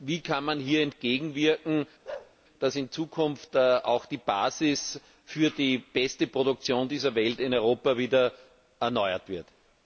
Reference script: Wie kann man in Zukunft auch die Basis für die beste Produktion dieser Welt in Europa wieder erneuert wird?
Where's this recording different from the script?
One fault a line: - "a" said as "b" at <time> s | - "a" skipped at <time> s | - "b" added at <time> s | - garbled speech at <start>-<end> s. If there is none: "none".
- "hier entgegenwirken dass" added at 0.6 s